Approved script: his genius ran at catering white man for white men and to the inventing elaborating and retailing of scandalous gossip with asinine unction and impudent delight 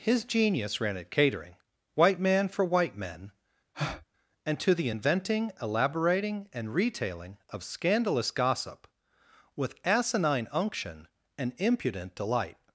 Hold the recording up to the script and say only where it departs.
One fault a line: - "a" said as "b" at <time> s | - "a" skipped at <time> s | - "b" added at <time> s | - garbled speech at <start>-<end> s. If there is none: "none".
none